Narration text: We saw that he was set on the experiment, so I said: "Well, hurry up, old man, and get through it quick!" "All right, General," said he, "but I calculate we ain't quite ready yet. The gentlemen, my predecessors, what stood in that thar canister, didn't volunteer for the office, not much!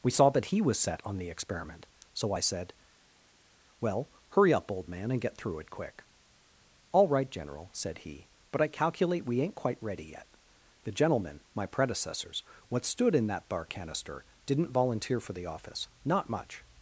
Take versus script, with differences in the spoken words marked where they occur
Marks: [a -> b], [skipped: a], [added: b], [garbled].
We saw that he was set on the experiment, so I said: "Well, hurry up, old man, and get through it quick!" "All right, General," said he, "but I calculate we ain't quite ready yet. The gentlemen, my predecessors, what stood in that [thar -> bar] canister, didn't volunteer for the office, not much!